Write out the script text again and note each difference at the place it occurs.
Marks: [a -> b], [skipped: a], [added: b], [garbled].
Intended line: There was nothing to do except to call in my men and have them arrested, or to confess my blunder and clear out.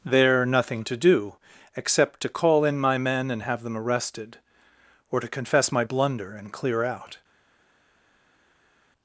There [skipped: was] nothing to do except to call in my men and have them arrested, or to confess my blunder and clear out.